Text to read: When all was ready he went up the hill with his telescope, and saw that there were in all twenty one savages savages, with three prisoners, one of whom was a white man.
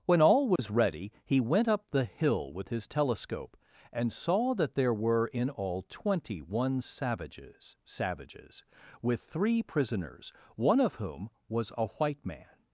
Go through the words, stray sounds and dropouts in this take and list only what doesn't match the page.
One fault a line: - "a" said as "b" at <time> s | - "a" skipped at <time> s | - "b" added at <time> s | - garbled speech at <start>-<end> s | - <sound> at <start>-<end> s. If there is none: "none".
- dropout at 0.6-0.6 s